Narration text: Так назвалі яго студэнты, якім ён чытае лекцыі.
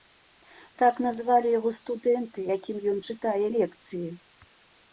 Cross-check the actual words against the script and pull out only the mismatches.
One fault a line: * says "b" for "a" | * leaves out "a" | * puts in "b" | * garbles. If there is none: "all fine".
all fine